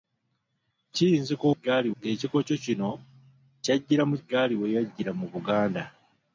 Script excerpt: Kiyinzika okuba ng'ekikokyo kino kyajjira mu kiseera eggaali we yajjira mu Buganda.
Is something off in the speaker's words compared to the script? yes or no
yes